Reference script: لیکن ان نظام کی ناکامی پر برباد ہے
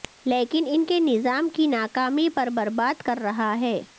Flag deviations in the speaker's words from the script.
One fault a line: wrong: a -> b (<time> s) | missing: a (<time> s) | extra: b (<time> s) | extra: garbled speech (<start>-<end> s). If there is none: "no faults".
extra: کے (0.8 s)
extra: کر رہا (3.0 s)